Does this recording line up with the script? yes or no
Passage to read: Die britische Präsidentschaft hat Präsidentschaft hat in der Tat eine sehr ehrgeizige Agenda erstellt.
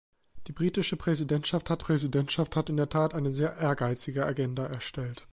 yes